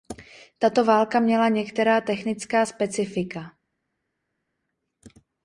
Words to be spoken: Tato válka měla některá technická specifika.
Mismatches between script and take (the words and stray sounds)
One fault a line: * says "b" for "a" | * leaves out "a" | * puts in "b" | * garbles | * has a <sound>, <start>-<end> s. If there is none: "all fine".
all fine